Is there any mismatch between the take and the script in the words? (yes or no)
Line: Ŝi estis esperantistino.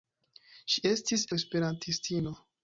no